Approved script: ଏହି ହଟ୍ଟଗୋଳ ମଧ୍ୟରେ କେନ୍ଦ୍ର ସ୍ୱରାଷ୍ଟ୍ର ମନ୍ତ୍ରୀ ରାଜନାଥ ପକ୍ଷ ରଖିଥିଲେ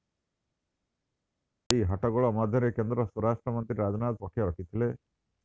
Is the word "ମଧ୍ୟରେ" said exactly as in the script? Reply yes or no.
yes